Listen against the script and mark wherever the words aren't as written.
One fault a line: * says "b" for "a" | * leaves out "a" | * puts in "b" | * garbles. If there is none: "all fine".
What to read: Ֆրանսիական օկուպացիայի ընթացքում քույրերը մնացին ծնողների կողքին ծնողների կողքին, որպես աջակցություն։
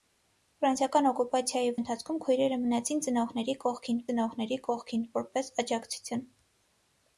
all fine